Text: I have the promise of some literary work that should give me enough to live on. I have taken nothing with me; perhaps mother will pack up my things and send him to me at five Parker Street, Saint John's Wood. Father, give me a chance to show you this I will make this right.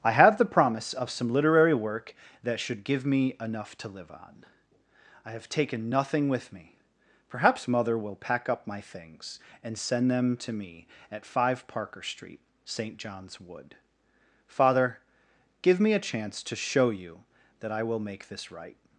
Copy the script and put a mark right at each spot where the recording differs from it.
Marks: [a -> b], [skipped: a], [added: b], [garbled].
I have the promise of some literary work that should give me enough to live on. I have taken nothing with me; perhaps mother will pack up my things and send [him -> them] to me at five Parker Street, Saint John's Wood. Father, give me a chance to show you [this -> that] I will make this right.